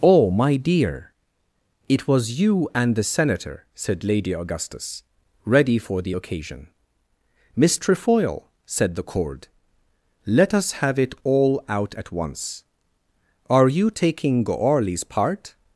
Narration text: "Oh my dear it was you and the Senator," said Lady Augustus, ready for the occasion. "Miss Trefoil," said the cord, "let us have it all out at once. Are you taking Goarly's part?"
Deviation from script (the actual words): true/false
false